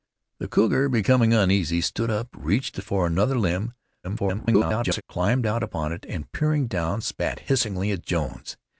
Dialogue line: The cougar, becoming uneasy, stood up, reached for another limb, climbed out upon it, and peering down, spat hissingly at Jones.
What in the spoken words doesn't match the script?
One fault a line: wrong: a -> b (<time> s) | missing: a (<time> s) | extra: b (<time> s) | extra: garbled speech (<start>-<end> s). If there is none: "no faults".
extra: garbled speech (4.0-5.0 s)